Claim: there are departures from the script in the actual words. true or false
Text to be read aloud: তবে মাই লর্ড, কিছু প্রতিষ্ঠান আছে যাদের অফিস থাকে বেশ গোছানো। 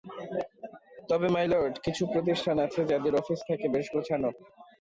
false